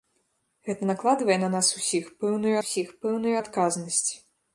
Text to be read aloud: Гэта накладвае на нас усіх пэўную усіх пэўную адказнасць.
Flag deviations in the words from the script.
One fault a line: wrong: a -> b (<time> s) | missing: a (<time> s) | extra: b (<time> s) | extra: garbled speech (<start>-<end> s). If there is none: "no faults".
no faults